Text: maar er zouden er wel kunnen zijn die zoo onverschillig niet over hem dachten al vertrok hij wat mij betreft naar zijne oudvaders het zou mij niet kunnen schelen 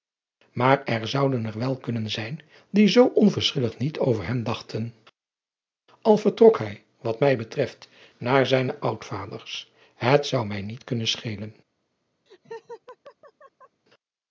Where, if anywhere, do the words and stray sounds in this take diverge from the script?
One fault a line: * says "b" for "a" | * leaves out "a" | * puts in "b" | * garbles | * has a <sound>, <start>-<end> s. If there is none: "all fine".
* has a laugh, 12.3-13.8 s